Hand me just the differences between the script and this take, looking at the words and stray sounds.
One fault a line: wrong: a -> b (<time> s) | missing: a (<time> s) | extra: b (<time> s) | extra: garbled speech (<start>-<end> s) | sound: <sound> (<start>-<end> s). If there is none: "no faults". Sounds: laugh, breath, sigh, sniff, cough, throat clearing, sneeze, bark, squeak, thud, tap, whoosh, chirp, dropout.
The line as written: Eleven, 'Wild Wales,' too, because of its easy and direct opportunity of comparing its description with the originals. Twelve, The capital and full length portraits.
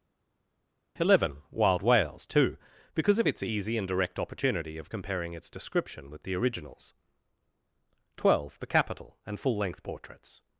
no faults